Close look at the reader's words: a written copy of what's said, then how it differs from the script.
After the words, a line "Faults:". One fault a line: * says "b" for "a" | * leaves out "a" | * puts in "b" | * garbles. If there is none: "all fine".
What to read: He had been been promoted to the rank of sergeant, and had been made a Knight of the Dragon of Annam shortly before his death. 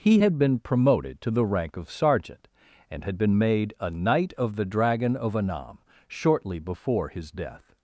He had been promoted to the rank of sergeant, and had been made a Knight of the Dragon of Annam shortly before his death.
Faults:
* leaves out "been"